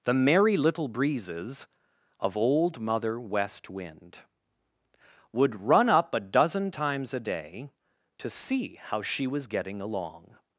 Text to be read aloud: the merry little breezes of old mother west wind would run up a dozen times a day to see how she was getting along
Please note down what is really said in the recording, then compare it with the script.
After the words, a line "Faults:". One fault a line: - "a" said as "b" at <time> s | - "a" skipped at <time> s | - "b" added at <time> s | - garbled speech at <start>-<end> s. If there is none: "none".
the merry little breezes of old mother west wind would run up a dozen times a day to see how she was getting along
Faults:
none